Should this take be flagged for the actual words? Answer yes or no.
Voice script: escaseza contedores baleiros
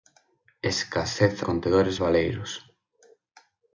no